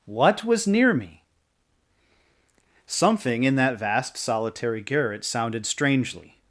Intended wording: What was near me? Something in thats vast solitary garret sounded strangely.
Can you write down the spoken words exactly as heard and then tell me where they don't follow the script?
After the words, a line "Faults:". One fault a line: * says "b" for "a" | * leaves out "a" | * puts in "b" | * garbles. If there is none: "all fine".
What was near me? Something in that vast solitary garret sounded strangely.
Faults:
* says "that" for "thats"